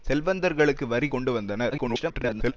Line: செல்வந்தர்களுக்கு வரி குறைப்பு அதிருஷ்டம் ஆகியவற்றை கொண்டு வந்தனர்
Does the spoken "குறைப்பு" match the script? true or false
false